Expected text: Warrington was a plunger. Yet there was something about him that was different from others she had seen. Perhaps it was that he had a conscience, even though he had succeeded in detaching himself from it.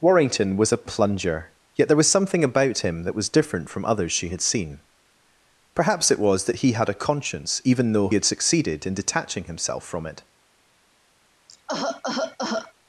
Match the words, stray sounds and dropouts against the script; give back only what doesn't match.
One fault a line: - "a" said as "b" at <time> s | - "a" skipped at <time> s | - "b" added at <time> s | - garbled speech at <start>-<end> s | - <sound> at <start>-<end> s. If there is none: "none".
- "he" skipped at 8.1 s
- cough at 11.5-12.7 s